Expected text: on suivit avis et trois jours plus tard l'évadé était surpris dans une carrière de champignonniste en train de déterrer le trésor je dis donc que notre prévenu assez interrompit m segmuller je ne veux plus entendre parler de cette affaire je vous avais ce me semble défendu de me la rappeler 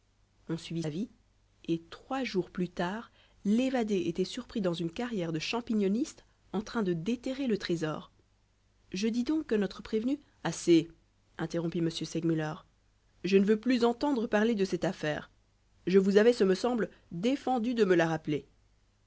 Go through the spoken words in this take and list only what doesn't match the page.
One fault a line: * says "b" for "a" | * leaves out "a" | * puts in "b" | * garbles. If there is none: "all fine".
all fine